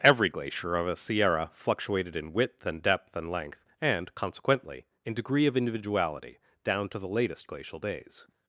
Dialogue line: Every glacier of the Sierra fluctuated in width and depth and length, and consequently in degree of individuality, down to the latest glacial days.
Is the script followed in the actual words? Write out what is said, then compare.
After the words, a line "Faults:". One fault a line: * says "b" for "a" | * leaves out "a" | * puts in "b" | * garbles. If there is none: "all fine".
Every glacier of a Sierra fluctuated in width and depth and length, and consequently in degree of individuality, down to the latest glacial days.
Faults:
* says "a" for "the"